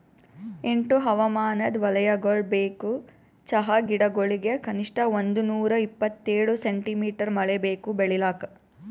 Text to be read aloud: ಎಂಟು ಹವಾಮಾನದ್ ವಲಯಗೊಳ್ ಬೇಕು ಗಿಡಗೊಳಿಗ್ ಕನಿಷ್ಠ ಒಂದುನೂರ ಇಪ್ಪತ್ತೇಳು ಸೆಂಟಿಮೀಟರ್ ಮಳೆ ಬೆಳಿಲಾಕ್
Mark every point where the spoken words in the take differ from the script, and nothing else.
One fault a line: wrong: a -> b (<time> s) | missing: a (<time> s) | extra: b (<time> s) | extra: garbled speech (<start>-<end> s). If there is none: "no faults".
extra: ಚಹಾ (3.5 s)
extra: ಬೇಕು (7.7 s)